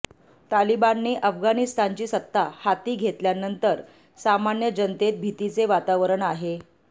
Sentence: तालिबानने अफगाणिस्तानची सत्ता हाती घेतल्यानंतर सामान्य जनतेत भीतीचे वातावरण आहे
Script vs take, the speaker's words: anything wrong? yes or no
no